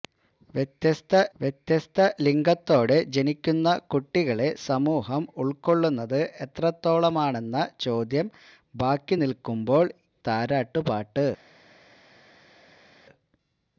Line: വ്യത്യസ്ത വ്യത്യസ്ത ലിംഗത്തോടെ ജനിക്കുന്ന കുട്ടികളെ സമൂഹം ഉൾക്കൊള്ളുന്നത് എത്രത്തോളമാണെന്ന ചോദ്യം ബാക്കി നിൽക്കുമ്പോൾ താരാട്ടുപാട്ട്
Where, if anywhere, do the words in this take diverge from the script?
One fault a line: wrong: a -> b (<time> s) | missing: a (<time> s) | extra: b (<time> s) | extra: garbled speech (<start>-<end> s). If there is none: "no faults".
no faults